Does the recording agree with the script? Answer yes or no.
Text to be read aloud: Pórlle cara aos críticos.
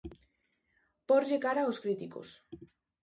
yes